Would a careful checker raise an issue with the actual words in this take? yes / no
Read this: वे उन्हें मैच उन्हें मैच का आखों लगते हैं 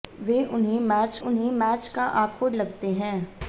no